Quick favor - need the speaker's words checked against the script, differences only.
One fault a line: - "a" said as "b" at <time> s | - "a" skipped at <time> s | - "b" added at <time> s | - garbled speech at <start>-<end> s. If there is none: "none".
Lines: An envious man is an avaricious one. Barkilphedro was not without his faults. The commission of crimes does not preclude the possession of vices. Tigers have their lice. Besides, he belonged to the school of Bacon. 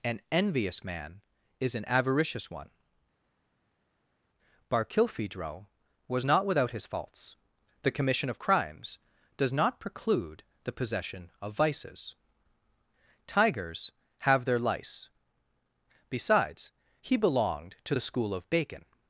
none